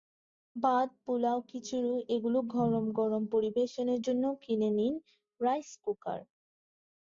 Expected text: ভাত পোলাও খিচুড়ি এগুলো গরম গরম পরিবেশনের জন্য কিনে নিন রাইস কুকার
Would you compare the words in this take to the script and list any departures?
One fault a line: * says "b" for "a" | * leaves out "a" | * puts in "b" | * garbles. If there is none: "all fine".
all fine